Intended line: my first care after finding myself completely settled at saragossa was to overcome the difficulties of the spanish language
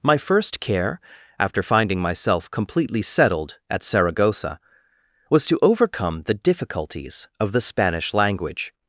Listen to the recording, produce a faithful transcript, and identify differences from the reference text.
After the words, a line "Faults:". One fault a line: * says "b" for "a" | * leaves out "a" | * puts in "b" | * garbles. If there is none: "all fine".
my first care after finding myself completely settled at saragossa was to overcome the difficulties of the spanish language
Faults:
all fine